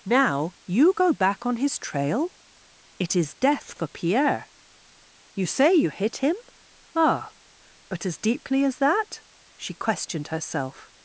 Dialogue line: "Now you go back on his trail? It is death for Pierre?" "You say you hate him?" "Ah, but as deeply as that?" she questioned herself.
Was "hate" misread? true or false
true